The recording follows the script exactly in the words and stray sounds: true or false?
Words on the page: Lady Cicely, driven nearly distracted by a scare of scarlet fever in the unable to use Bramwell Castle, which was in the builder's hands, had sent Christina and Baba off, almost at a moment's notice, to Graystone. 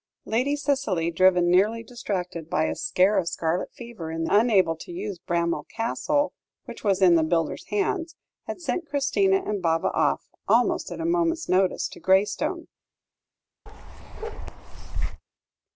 false